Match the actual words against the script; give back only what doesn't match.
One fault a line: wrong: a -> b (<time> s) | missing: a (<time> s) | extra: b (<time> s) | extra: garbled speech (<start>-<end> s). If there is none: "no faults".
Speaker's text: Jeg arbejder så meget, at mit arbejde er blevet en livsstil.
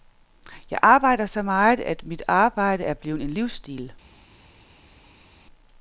no faults